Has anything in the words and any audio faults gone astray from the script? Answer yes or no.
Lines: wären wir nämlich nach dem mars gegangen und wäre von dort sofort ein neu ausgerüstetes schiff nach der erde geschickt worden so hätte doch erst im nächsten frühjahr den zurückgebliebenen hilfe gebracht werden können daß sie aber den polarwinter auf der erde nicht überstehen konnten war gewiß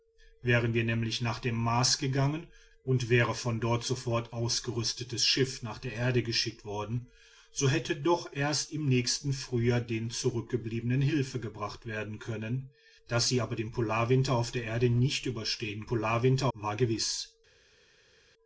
yes